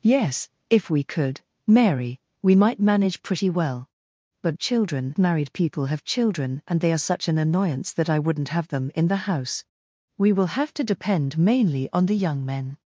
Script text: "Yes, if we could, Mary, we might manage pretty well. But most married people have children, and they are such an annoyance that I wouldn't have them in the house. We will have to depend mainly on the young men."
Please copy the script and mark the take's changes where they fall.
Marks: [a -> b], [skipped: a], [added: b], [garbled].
"Yes, if we could, Mary, we might manage pretty well. But [most -> children] married people have children, and they are such an annoyance that I wouldn't have them in the house. We will have to depend mainly on the young men."